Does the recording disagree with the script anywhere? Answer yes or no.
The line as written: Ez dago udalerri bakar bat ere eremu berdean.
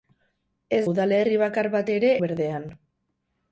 yes